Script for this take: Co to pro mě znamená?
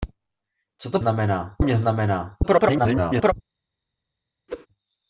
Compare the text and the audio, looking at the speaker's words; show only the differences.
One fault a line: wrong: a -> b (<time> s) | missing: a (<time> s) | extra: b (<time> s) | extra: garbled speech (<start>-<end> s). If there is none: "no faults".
wrong: pro -> znamená (1.0 s)
extra: garbled speech (2.4-3.3 s)